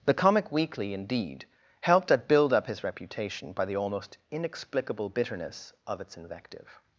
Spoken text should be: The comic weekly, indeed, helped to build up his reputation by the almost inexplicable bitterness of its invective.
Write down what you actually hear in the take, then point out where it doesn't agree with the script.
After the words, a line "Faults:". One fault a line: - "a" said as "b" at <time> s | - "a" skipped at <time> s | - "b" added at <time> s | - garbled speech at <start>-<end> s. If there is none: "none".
The comic weekly, indeed, helped at build up his reputation by the almost inexplicable bitterness of its invective.
Faults:
- "to" said as "at" at 2.1 s